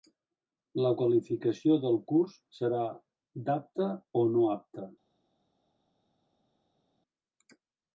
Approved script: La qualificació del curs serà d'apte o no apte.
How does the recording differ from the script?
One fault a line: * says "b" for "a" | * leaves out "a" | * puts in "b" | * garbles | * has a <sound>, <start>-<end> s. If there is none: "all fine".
all fine